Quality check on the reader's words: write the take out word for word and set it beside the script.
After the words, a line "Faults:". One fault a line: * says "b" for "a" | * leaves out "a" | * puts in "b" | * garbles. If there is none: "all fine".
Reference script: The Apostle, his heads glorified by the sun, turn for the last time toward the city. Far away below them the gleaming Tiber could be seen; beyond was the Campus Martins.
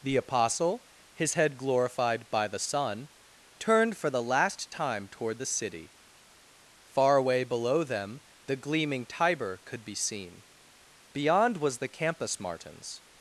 The Apostle, his head glorified by the sun, turned for the last time toward the city. Far away below them the gleaming Tiber could be seen; beyond was the Campus Martins.
Faults:
* says "head" for "heads"
* says "turned" for "turn"